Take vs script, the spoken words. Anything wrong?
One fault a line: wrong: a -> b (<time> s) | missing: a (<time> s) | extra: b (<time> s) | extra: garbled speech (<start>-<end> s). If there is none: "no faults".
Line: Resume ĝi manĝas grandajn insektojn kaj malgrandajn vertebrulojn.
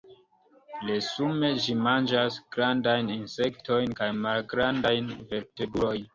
no faults